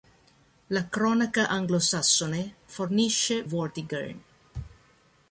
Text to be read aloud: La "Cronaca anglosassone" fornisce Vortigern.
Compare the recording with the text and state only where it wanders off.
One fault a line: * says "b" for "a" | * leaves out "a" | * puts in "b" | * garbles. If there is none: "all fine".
all fine